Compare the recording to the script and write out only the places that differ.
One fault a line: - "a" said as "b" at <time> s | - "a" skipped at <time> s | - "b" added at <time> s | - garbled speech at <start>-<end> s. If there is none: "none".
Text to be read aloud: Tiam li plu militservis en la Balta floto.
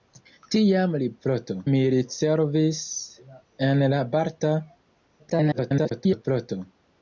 - "plu" said as "floto" at 1.3 s
- garbled speech at 5.2-6.2 s